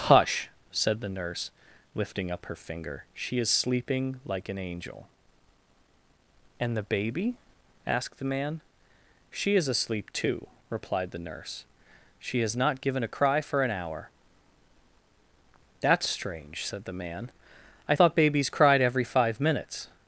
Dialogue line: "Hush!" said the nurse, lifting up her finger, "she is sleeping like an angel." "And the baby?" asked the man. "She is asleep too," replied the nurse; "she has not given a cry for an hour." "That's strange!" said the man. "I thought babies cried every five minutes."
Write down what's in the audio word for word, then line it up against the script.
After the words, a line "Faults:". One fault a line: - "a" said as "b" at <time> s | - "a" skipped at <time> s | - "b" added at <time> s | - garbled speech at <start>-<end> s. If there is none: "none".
"Hush!" said the nurse, lifting up her finger, "she is sleeping like an angel." "And the baby?" asked the man. "She is asleep too," replied the nurse; "she has not given a cry for an hour." "That's strange!" said the man. "I thought babies cried every five minutes."
Faults:
none